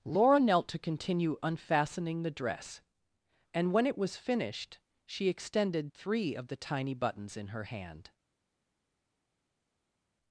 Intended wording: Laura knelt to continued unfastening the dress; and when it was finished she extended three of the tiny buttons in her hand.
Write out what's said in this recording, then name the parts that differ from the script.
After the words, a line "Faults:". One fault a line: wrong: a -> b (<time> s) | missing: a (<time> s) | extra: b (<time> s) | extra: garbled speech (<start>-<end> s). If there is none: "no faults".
Laura knelt to continue unfastening the dress; and when it was finished she extended three of the tiny buttons in her hand.
Faults:
wrong: continued -> continue (0.8 s)